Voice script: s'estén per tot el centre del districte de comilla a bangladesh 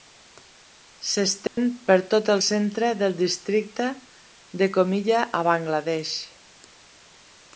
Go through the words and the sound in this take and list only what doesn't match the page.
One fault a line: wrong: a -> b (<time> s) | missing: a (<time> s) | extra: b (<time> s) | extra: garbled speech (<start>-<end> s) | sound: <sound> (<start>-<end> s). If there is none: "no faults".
sound: dropout (1.5-1.6 s)